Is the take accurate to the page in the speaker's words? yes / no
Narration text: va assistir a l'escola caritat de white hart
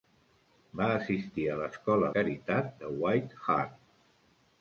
yes